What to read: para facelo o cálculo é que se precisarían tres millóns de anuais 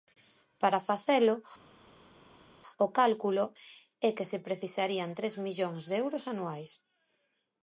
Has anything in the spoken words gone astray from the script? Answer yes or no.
yes